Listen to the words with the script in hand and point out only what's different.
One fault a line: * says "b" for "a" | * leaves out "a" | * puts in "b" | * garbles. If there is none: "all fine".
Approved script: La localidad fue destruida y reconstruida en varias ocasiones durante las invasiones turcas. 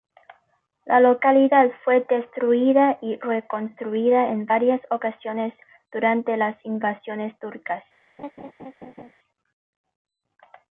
all fine